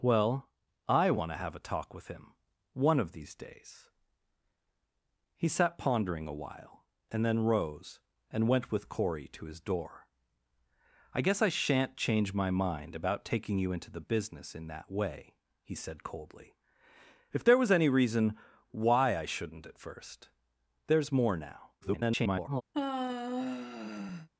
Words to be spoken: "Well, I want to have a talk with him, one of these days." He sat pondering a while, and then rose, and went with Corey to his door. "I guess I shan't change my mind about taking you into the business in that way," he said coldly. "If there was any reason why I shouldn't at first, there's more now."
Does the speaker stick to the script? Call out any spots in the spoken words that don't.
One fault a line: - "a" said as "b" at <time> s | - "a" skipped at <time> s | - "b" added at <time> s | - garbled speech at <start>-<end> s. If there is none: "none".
- garbled speech at 21.8-22.6 s